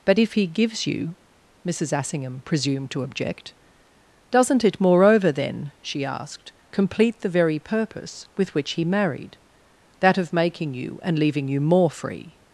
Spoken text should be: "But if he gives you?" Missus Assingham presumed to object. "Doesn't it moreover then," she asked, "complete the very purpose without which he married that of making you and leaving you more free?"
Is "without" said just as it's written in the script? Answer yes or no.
no